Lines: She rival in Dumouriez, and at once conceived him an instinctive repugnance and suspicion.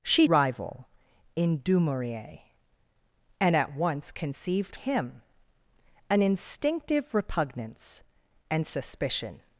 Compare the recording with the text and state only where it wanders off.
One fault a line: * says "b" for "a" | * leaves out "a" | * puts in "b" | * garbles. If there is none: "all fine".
all fine